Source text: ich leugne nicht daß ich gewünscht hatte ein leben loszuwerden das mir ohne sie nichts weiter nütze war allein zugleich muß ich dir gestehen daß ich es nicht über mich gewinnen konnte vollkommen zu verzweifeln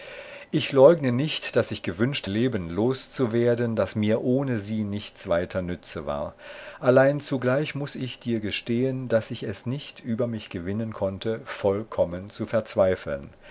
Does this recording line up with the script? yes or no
no